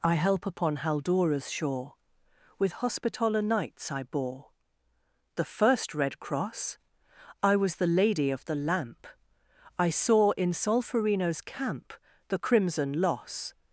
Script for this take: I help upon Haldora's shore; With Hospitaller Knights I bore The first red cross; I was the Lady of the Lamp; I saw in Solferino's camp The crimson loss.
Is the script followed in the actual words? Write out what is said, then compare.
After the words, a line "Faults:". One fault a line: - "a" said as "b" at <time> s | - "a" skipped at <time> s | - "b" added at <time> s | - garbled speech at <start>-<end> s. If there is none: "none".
I help upon Haldora's shore; With Hospitaller Knights I bore The first red cross; I was the Lady of the Lamp; I saw in Solferino's camp The crimson loss.
Faults:
none